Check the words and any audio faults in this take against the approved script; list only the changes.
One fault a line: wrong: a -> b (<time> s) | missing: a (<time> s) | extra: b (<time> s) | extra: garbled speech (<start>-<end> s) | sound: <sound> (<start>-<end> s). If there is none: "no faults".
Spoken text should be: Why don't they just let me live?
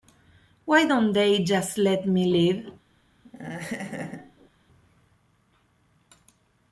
sound: laugh (3.2-4.5 s)